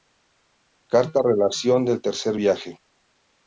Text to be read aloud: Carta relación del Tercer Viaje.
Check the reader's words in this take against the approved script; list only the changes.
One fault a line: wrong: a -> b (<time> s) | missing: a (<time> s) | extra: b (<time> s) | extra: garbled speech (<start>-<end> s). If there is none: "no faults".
no faults